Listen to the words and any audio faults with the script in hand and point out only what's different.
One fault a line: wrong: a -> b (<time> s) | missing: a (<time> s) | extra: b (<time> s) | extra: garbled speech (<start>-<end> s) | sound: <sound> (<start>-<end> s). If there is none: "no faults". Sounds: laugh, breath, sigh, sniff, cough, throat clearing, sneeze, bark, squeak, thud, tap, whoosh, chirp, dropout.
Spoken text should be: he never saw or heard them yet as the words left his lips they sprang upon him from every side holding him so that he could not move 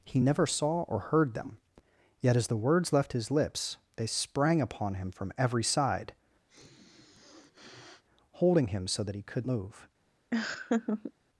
sound: sniff (6.5-8.0 s)
missing: not (9.5 s)
sound: laugh (10.3-11.1 s)